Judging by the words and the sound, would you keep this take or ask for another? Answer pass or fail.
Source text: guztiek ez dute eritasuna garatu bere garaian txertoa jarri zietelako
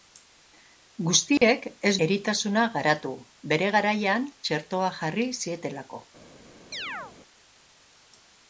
fail